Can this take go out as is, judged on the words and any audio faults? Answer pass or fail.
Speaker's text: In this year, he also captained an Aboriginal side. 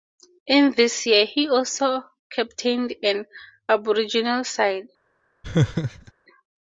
fail